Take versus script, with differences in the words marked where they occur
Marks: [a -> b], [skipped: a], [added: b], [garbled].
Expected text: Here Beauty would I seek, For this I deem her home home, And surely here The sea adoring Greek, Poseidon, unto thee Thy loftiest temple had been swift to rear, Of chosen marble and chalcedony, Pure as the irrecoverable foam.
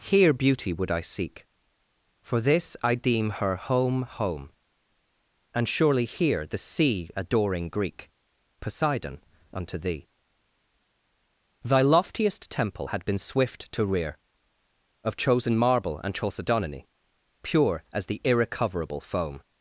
Here Beauty would I seek, For this I deem her home home, And surely here The sea adoring Greek, Poseidon, unto thee Thy loftiest temple had been swift to rear, Of chosen marble and chalcedony, Pure as the irrecoverable foam.